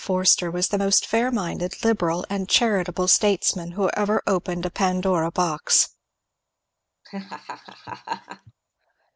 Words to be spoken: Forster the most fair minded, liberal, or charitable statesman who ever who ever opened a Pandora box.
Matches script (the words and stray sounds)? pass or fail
fail